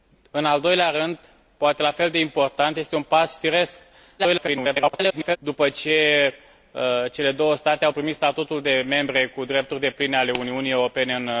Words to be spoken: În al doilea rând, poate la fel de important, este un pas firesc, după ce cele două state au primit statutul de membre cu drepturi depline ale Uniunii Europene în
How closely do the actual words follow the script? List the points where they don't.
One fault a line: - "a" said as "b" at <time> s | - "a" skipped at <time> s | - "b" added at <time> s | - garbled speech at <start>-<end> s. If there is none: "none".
- garbled speech at 4.2-5.4 s